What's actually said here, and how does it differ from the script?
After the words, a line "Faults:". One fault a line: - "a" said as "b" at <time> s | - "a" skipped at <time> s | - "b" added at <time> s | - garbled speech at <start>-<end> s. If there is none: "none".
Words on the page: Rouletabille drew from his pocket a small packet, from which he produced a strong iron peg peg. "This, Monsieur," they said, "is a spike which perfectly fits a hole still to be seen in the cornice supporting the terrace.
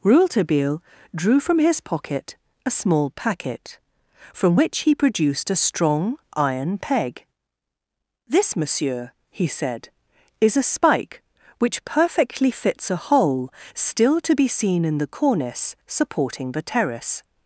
Rouletabille drew from his pocket a small packet, from which he produced a strong iron peg. "This, Monsieur," he said, "is a spike which perfectly fits a hole still to be seen in the cornice supporting the terrace.
Faults:
- "peg" skipped at 7.3 s
- "they" said as "he" at 9.3 s